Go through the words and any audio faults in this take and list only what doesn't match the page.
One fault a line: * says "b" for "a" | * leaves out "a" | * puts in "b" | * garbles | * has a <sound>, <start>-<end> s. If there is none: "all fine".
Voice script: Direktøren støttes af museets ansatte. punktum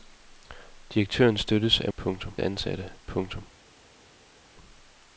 * says "punktum" for "museets"